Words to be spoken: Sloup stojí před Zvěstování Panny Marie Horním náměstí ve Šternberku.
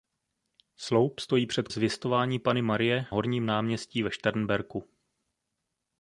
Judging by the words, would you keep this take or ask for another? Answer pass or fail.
pass